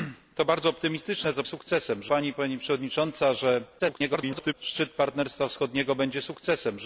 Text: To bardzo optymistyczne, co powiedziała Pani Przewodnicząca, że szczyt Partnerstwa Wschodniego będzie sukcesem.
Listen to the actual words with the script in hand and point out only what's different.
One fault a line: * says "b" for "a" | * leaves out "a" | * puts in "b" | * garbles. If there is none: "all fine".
* says "sukcesem" for "powiedziała"
* garbles